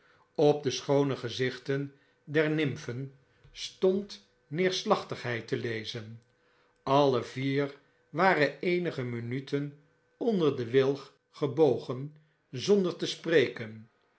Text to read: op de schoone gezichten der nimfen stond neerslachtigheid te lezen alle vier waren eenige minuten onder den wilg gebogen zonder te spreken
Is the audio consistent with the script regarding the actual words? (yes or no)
yes